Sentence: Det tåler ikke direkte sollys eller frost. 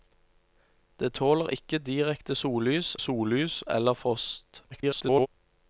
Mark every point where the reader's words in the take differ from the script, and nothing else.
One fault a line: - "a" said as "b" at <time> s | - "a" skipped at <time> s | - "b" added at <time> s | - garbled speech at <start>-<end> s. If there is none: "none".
- "sollys" added at 3.0 s
- garbled speech at 4.7-5.3 s